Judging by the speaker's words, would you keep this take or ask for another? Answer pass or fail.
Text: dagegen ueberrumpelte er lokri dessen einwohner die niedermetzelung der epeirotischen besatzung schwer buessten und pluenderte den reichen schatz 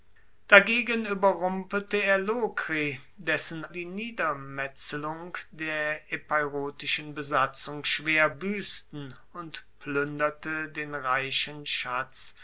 fail